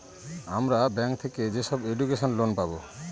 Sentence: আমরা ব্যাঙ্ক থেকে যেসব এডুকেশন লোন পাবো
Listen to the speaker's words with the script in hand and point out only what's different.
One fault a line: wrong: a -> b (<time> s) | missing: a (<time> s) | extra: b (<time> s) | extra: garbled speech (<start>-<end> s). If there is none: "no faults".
no faults